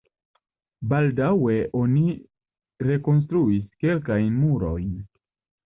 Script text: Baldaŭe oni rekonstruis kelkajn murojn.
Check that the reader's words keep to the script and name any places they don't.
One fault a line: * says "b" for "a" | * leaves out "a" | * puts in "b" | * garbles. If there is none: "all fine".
all fine